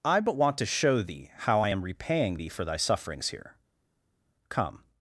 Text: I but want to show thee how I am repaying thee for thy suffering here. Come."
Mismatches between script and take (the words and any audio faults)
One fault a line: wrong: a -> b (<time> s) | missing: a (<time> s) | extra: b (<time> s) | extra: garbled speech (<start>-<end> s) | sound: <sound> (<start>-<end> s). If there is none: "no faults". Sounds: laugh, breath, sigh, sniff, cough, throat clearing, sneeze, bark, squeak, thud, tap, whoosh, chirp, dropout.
wrong: suffering -> sufferings (2.8 s)